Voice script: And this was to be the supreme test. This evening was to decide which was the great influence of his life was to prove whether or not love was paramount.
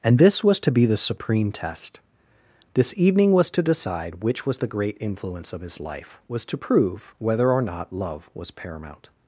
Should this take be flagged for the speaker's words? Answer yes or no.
no